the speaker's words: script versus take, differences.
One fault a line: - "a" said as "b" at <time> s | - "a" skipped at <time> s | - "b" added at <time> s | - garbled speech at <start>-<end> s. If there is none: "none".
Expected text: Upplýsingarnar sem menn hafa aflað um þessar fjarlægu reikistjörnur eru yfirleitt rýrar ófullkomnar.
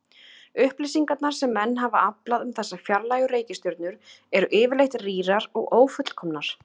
- "og" added at 5.6 s